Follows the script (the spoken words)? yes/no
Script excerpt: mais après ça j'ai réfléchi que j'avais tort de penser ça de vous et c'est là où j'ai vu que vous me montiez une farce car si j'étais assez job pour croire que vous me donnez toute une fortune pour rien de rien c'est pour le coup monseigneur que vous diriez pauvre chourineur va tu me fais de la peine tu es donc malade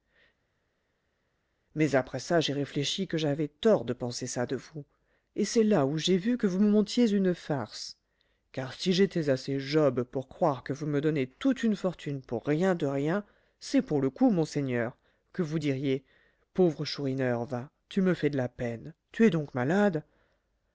yes